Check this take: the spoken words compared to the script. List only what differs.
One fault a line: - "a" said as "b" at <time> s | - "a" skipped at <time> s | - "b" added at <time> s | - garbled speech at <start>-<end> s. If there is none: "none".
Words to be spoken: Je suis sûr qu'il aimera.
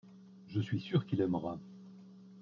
none